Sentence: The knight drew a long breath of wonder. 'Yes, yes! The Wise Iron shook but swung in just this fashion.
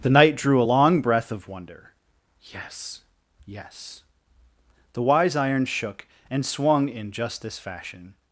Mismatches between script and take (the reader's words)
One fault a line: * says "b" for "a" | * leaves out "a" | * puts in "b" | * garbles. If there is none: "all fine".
* says "and" for "but"